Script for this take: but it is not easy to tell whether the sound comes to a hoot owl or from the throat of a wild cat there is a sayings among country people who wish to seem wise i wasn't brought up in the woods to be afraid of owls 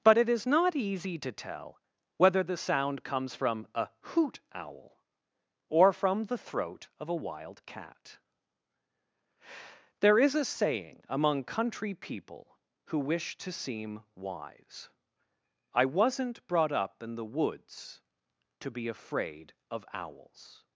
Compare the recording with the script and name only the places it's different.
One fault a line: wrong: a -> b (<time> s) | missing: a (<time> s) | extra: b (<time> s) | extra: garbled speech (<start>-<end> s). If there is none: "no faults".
wrong: to -> from (3.4 s)
wrong: sayings -> saying (10.4 s)